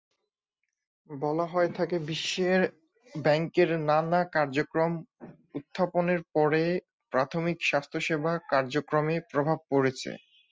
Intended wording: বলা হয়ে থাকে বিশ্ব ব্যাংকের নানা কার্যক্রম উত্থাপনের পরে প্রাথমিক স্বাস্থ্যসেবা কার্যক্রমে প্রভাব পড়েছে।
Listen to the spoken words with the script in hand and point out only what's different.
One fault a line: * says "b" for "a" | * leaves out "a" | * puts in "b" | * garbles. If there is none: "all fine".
all fine